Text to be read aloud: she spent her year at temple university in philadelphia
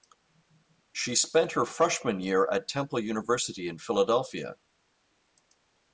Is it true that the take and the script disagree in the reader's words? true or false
true